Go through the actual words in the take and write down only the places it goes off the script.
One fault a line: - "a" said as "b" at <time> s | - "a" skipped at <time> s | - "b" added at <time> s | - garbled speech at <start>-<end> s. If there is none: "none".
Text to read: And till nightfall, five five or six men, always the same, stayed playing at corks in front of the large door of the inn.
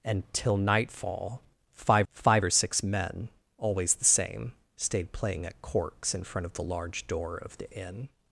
none